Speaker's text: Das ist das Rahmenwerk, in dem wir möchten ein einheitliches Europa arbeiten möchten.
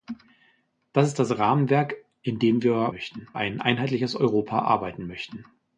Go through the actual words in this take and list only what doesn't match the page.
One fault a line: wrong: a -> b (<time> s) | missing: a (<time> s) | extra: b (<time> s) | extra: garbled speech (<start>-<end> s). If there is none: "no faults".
no faults